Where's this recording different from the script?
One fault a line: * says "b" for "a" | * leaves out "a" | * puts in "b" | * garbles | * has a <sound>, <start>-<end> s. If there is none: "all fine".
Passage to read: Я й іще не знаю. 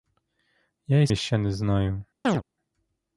* has a chirp, 2.2-2.4 s